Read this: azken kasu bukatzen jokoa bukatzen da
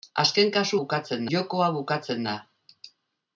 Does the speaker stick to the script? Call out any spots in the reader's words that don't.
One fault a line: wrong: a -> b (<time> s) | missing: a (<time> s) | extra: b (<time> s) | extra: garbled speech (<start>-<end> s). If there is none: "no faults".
no faults